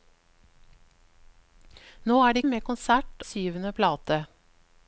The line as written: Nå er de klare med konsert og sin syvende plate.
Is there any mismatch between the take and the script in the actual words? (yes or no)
yes